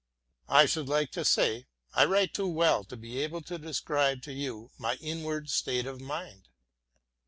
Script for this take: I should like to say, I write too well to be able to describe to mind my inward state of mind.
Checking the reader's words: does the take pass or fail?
fail